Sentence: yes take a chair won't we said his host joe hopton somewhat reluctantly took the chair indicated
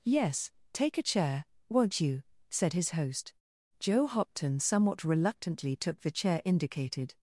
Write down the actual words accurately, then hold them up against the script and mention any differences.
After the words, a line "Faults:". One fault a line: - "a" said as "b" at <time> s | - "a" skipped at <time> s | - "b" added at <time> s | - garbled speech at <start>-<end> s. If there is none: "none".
yes take a chair won't you said his host joe hopton somewhat reluctantly took the chair indicated
Faults:
- "we" said as "you" at 2.0 s